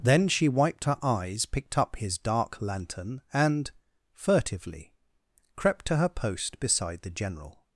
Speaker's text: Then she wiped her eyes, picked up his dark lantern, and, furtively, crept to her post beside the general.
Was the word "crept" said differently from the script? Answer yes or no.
no